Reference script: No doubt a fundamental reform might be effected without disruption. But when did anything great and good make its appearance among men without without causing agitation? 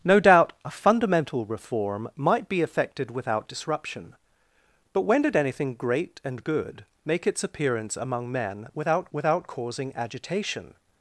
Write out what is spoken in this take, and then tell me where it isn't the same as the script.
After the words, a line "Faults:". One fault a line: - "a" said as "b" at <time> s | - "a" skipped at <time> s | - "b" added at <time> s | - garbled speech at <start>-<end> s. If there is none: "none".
No doubt a fundamental reform might be effected without disruption. But when did anything great and good make its appearance among men without without causing agitation?
Faults:
none